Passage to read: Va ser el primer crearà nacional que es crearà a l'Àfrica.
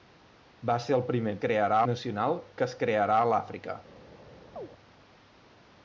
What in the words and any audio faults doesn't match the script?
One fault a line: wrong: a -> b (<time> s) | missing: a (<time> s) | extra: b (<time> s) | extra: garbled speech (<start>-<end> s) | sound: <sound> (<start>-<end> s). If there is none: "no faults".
sound: chirp (4.6-4.7 s)